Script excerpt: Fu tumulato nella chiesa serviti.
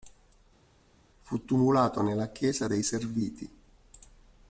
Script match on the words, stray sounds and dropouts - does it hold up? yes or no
no